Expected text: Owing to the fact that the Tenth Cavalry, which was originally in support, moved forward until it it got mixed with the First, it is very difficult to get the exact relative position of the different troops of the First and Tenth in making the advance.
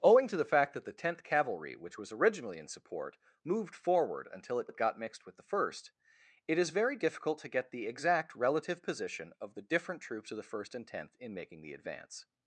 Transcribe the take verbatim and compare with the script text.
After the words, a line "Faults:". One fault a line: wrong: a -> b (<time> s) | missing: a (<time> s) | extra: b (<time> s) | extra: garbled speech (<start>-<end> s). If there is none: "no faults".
Owing to the fact that the Tenth Cavalry, which was originally in support, moved forward until it it got mixed with the First, it is very difficult to get the exact relative position of the different troops of the First and Tenth in making the advance.
Faults:
no faults